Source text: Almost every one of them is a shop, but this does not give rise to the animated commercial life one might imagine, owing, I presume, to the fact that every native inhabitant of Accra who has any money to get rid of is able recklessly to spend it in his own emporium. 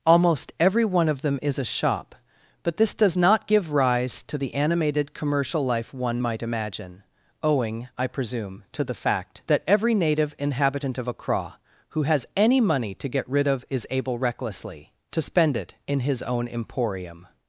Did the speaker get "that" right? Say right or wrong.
right